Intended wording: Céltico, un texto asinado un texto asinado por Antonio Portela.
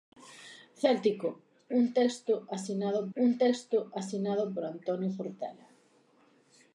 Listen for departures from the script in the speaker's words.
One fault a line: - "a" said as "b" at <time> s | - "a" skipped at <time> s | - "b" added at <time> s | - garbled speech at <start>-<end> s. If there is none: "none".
none